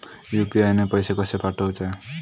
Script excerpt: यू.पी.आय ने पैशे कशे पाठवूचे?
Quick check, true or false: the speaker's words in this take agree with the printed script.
true